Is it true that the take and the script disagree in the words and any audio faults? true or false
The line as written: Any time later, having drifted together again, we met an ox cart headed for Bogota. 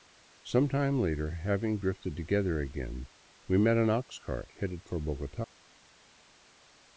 true